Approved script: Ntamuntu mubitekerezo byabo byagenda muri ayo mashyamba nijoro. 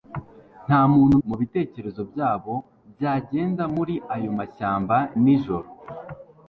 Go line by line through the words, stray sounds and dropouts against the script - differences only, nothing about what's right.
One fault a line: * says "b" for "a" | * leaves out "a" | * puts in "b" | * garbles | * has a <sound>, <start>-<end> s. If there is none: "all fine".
all fine